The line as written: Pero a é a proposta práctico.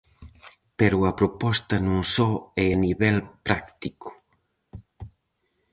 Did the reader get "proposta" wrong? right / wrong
wrong